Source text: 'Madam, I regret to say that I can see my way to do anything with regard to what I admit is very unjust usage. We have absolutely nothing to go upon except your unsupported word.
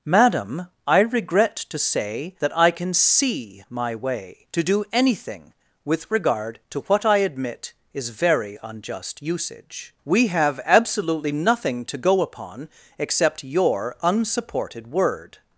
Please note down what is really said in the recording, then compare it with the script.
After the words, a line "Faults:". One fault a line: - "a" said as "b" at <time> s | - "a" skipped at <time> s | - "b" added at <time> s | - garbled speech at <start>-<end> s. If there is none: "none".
'Madam, I regret to say that I can see my way to do anything with regard to what I admit is very unjust usage. We have absolutely nothing to go upon except your unsupported word.
Faults:
none